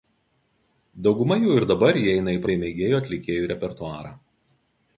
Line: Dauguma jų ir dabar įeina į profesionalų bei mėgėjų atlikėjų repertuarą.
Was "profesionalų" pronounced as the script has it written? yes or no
no